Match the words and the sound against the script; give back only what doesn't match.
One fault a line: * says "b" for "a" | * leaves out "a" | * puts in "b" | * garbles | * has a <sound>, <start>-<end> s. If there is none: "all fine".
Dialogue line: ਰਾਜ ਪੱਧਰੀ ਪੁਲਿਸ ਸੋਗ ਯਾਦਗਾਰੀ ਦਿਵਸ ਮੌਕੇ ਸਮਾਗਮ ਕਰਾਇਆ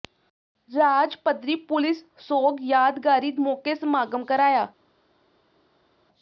* leaves out "ਦਿਵਸ"